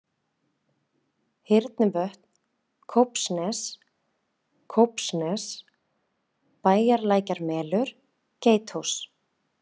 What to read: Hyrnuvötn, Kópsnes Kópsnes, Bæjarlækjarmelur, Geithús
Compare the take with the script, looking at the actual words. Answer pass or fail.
pass